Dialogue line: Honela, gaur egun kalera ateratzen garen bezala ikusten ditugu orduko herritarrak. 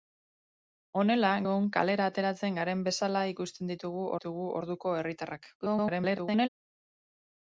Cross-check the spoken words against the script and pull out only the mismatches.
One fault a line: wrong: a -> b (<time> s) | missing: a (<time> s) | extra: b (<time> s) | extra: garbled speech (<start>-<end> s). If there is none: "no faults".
missing: gaur (1.3 s)
extra: ditugu (4.1 s)
extra: garbled speech (5.6-6.5 s)